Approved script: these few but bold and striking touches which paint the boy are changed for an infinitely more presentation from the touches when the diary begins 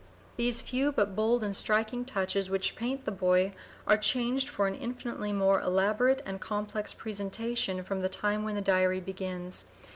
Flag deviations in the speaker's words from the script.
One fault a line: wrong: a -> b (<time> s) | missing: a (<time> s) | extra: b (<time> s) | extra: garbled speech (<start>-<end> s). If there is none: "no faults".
extra: elaborate and complex (5.6 s)
wrong: touches -> time (8.1 s)